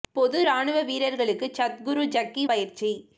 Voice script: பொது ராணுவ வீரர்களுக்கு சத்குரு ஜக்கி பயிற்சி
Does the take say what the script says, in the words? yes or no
yes